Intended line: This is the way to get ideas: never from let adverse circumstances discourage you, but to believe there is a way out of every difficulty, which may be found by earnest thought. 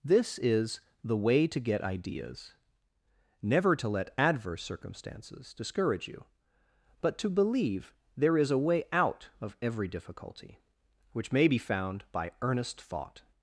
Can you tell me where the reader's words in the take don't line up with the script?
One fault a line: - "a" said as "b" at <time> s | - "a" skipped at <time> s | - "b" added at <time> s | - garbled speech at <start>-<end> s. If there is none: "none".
- "from" said as "to" at 3.8 s